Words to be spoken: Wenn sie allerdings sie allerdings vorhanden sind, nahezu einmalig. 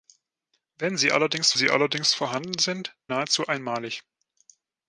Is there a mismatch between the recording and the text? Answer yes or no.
no